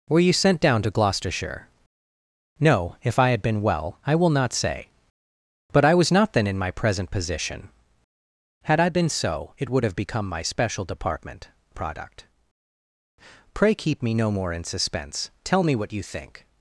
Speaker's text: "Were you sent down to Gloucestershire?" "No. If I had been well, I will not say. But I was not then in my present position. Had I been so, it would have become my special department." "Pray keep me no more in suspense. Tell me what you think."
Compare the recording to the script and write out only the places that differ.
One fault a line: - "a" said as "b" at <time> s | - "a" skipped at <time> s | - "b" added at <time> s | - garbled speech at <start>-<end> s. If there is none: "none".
- "product" added at 11.7 s